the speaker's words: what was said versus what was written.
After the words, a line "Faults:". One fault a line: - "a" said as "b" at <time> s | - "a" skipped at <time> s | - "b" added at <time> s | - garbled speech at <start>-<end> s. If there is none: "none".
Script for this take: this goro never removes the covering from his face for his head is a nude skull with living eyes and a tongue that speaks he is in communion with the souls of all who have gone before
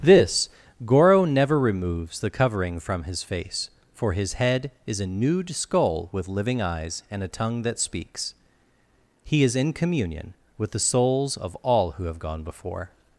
this goro never removes the covering from his face for his head is a nude skull with living eyes and a tongue that speaks he is in communion with the souls of all who have gone before
Faults:
none